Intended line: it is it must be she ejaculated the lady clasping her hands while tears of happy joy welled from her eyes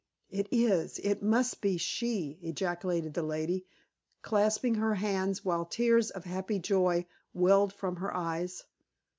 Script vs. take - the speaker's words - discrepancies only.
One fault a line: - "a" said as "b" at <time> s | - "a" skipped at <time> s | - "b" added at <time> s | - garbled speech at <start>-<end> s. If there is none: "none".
none